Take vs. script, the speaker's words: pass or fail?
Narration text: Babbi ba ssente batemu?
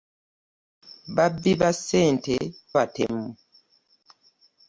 pass